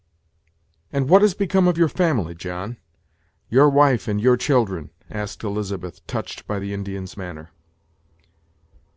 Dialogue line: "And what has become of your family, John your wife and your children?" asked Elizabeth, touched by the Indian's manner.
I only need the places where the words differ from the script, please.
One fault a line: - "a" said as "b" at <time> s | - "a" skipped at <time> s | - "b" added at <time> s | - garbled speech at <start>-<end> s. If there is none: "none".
none